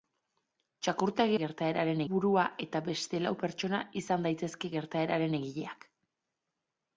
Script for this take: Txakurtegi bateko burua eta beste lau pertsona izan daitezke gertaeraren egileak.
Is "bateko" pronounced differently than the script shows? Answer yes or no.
yes